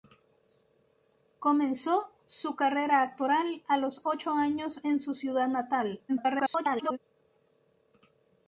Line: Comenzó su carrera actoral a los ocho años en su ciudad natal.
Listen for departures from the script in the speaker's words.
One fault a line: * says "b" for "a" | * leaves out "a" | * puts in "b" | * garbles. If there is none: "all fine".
* garbles